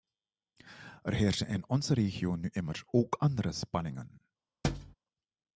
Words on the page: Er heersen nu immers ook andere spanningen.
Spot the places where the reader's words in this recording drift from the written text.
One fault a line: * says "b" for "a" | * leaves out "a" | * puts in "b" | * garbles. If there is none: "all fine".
* puts in "in onze regio"